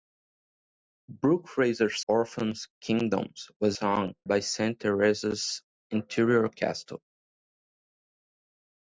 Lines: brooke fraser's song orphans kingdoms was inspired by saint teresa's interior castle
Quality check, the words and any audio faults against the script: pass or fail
fail